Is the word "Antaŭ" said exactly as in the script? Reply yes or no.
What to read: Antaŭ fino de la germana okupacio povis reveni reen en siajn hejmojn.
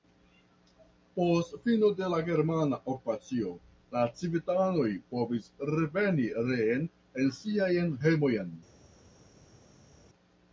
no